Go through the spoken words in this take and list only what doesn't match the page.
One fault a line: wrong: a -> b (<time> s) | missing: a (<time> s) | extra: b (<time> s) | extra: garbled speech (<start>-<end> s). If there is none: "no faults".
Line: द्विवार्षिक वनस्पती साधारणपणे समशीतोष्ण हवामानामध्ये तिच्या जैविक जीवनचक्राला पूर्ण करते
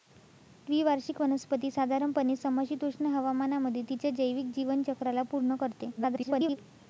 extra: garbled speech (6.0-6.6 s)